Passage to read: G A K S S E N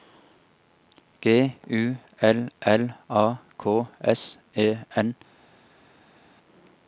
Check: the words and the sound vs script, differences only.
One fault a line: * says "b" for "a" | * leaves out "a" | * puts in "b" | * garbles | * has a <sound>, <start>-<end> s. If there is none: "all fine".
* puts in "U L L"
* leaves out "S"